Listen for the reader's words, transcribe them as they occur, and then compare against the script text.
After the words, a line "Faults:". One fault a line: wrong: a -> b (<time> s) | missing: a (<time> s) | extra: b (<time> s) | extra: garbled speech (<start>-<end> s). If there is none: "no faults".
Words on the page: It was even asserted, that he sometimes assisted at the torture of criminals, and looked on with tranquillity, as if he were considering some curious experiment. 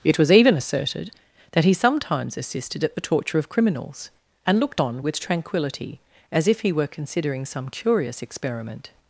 It was even asserted, that he sometimes assisted at the torture of criminals, and looked on with tranquillity, as if he were considering some curious experiment.
Faults:
no faults